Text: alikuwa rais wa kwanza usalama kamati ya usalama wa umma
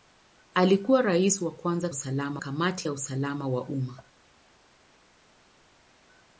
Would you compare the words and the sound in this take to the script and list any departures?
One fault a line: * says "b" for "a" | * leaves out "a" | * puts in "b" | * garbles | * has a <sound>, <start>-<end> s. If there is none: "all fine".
all fine